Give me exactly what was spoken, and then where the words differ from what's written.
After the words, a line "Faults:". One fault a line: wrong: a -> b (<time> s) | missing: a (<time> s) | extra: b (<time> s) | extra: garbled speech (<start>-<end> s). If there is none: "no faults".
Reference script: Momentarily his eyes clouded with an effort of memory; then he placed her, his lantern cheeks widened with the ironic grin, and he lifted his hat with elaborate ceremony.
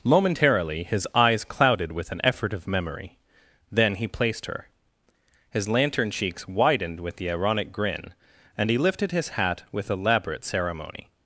Momentarily his eyes clouded with an effort of memory; then he placed her, his lantern cheeks widened with the ironic grin, and he lifted his hat with elaborate ceremony.
Faults:
no faults